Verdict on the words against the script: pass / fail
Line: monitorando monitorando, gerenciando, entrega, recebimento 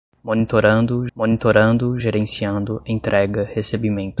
pass